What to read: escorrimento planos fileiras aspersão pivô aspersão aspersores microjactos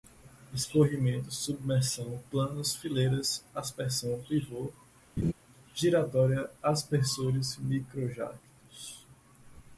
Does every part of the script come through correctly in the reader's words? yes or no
no